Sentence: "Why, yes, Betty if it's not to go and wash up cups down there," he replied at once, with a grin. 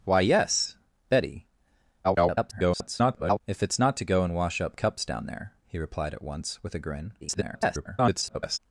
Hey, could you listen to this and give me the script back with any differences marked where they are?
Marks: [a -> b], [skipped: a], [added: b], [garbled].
"Why, yes, Betty [garbled] if it's not to go and wash up cups down there," he replied at once, with a grin. [garbled]